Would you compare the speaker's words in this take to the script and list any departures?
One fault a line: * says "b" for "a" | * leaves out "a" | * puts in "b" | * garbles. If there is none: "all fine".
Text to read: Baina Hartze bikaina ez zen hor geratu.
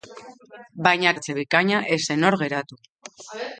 all fine